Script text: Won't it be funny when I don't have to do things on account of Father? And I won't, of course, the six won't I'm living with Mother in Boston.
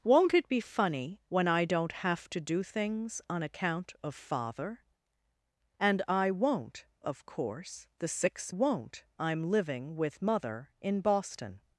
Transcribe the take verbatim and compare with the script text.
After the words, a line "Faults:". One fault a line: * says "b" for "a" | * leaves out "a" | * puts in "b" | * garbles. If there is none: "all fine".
Won't it be funny when I don't have to do things on account of Father? And I won't, of course, the six won't I'm living with Mother in Boston.
Faults:
all fine